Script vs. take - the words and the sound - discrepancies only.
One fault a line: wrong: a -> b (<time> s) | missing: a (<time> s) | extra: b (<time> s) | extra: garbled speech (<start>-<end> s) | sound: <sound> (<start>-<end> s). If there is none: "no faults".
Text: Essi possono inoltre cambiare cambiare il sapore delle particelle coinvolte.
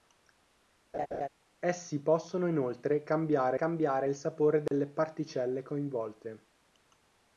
sound: laugh (0.9-1.3 s)
sound: dropout (4.7-4.7 s)